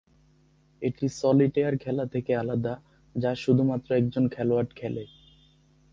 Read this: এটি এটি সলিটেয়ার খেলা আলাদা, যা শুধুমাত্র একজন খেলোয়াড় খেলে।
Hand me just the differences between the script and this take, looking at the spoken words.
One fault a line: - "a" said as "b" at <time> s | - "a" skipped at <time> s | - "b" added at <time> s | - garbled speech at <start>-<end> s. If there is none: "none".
- "এটি" skipped at 1.1 s
- "থেকে" added at 2.1 s